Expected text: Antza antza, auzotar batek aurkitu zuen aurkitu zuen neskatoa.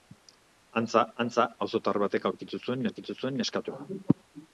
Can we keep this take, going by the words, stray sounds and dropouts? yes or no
yes